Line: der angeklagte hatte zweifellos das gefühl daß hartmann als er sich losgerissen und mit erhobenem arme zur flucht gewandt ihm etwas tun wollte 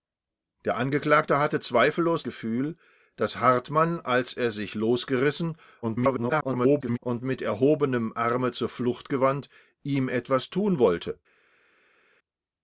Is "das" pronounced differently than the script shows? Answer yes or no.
yes